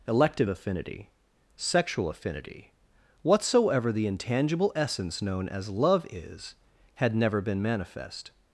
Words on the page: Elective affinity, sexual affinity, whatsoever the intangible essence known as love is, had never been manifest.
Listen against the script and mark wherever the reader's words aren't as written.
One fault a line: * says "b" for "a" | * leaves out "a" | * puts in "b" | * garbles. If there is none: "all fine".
all fine